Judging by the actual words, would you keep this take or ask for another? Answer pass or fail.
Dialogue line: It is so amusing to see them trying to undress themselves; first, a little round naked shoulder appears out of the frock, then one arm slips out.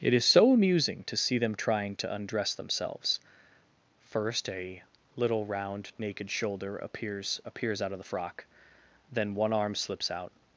fail